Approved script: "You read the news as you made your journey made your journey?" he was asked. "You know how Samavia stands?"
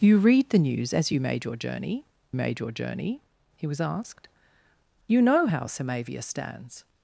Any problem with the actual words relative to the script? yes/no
no